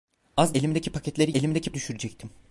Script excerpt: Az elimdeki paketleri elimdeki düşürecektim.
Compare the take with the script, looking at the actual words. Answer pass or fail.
pass